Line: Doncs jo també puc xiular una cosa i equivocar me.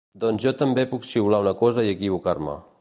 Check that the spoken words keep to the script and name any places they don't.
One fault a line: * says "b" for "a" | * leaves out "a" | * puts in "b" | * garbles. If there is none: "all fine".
all fine